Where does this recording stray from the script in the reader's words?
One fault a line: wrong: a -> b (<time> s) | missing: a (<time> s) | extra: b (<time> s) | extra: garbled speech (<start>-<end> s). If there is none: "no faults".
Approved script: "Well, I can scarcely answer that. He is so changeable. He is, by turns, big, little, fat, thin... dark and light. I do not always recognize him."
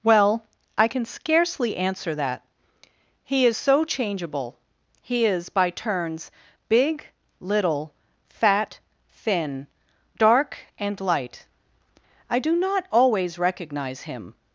no faults